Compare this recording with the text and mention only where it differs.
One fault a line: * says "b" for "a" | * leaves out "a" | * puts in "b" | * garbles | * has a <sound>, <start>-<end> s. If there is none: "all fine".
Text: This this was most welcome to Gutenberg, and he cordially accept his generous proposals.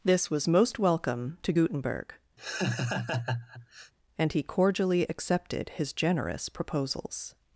* leaves out "this"
* has a laugh, 2.4-3.9 s
* says "accepted" for "accept"